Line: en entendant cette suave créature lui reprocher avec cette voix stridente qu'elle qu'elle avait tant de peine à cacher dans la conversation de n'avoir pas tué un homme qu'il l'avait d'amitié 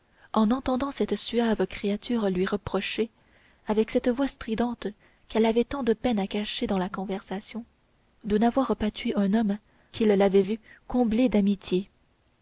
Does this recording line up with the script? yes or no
no